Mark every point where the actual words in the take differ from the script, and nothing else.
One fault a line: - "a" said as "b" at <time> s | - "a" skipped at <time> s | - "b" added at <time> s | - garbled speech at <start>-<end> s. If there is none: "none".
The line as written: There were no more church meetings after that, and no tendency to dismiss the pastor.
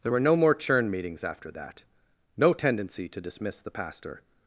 - "church" said as "churn" at 0.5 s
- "and" skipped at 1.8 s